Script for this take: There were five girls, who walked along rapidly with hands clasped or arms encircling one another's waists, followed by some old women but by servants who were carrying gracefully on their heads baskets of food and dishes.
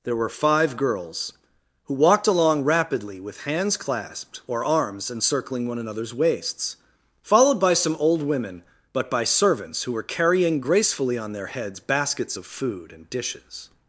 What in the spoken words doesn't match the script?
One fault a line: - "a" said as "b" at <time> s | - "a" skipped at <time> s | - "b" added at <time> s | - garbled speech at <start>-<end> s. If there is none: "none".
none